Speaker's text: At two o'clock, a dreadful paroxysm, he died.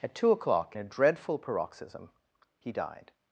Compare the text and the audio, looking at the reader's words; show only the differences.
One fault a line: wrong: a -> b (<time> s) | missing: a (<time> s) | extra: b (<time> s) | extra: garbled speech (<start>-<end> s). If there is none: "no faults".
no faults